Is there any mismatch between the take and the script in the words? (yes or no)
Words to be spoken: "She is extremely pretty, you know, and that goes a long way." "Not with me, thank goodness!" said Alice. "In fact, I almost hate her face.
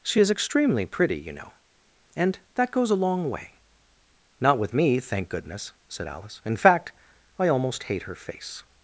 no